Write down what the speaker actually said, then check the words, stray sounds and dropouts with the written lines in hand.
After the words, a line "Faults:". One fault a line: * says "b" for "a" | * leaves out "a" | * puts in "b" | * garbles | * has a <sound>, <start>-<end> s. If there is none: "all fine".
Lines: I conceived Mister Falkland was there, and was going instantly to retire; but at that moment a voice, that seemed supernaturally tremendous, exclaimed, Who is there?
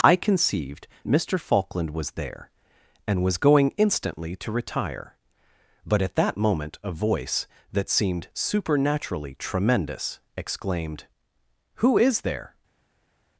I conceived Mister Falkland was there, and was going instantly to retire; but at that moment a voice, that seemed supernaturally tremendous, exclaimed, Who is there?
Faults:
all fine